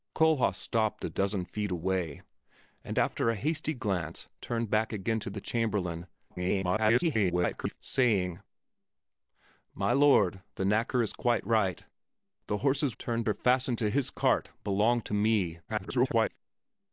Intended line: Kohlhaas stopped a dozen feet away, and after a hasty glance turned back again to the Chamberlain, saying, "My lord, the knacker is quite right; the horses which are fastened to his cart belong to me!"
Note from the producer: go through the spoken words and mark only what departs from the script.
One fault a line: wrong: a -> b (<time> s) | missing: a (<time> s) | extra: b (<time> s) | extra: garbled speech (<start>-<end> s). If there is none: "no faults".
extra: garbled speech (6.3-7.8 s)
wrong: which -> turned (13.0 s)
extra: garbled speech (15.7-16.4 s)